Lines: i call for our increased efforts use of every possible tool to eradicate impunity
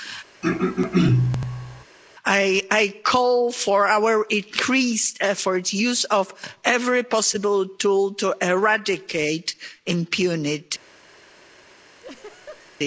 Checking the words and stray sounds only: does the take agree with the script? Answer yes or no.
no